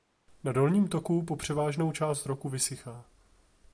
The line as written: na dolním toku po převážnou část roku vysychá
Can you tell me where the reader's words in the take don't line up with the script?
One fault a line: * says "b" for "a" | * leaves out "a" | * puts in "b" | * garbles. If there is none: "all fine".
all fine